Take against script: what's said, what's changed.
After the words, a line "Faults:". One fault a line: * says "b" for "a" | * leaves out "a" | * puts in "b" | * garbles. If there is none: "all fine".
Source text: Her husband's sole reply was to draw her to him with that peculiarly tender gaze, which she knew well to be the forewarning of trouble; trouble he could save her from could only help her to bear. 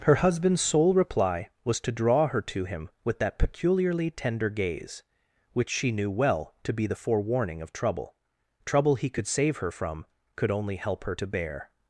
Her husband's sole reply was to draw her to him with that peculiarly tender gaze, which she knew well to be the forewarning of trouble; trouble he could save her from could only help her to bear.
Faults:
all fine